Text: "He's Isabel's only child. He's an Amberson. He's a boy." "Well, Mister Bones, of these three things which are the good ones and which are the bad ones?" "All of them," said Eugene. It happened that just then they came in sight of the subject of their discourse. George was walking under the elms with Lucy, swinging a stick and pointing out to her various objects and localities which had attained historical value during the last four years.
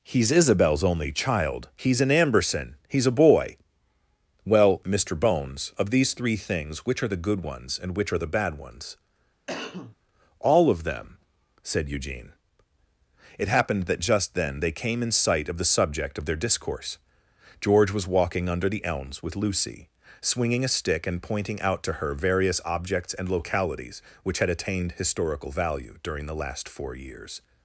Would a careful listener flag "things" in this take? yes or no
no